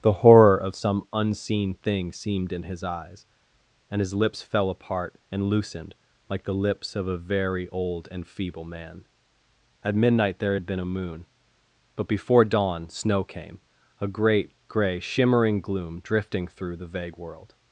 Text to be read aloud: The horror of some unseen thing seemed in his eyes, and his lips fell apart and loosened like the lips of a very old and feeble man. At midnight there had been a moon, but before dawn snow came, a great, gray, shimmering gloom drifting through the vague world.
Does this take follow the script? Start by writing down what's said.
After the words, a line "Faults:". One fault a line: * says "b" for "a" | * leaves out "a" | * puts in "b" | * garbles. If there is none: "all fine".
The horror of some unseen thing seemed in his eyes, and his lips fell apart and loosened like the lips of a very old and feeble man. At midnight there had been a moon, but before dawn snow came, a great, gray, shimmering gloom drifting through the vague world.
Faults:
all fine